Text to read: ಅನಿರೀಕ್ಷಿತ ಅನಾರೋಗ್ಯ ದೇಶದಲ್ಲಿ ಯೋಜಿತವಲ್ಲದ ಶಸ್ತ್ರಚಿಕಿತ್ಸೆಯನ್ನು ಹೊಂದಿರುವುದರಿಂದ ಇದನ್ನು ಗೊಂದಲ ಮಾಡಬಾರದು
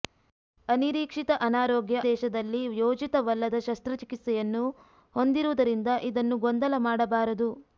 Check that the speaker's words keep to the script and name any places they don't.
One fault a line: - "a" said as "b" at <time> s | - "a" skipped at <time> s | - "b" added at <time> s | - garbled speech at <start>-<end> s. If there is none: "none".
none